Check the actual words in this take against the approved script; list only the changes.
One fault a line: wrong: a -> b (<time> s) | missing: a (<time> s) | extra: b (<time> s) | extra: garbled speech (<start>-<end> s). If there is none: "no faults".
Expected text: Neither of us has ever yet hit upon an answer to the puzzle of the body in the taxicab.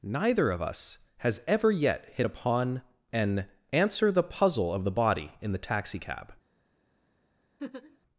missing: to (4.1 s)